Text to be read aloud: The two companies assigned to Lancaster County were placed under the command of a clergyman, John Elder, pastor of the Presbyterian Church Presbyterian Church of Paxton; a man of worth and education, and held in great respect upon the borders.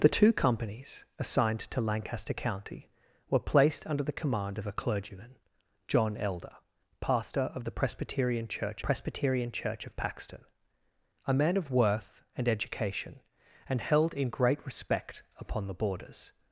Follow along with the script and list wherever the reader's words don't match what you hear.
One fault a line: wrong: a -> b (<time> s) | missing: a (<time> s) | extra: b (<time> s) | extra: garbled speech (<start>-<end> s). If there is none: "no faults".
no faults